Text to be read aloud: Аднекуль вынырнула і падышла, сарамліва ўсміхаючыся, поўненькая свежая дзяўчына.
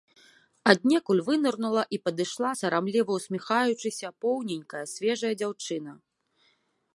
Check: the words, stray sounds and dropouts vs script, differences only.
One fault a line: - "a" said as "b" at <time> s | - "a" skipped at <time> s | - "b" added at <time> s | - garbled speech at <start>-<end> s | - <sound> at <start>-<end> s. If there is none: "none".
none